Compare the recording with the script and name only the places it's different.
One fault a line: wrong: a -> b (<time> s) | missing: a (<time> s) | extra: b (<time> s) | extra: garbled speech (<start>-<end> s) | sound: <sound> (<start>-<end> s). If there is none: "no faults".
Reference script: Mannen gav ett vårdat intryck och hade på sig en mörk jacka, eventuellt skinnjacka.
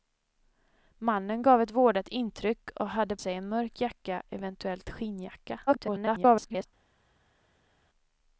missing: på (3.2 s)
extra: garbled speech (5.7-6.7 s)